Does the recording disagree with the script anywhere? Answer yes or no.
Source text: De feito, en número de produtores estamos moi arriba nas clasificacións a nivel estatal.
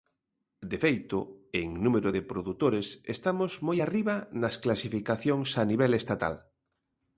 no